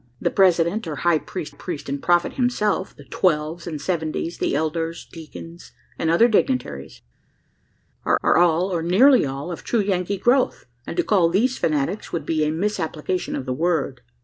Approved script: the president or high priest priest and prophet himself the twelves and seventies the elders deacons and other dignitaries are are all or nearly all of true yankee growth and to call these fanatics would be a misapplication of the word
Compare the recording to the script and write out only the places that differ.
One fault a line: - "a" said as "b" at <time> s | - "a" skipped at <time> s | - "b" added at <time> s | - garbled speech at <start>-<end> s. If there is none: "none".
none